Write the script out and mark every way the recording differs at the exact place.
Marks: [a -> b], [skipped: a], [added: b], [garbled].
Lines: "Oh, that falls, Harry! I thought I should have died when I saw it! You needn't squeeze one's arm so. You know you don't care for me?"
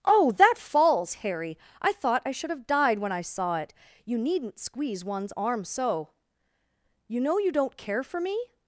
"Oh, that falls, Harry! I thought I should have died when I saw it! You needn't squeeze one's arm so. You know you don't care for me?"